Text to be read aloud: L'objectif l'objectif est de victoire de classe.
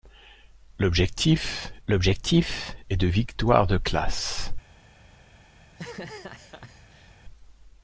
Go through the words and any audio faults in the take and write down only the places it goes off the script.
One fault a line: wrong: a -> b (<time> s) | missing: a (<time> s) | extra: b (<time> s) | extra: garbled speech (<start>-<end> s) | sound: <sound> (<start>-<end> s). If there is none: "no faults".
sound: laugh (5.6-7.2 s)